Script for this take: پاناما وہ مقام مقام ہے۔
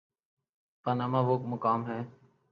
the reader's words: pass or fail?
fail